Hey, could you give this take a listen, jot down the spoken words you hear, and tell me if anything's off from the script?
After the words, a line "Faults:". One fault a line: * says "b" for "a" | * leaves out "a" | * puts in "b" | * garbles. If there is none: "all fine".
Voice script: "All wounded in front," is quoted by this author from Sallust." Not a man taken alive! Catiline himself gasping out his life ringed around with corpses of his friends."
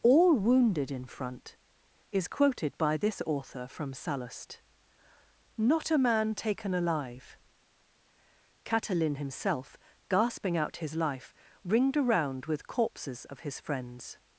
"All wounded in front," is quoted by this author from Sallust." Not a man taken alive! Catiline himself gasping out his life ringed around with corpses of his friends."
Faults:
all fine